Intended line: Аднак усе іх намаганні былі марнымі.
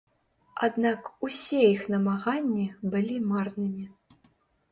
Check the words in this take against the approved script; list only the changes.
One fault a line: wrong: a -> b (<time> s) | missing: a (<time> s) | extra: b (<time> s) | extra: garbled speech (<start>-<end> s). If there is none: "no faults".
no faults